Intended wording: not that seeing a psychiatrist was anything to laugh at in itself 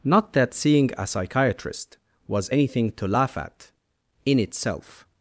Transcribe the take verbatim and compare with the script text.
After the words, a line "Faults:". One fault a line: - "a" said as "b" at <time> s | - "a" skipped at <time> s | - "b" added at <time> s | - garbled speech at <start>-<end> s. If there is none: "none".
not that seeing a psychiatrist was anything to laugh at in itself
Faults:
none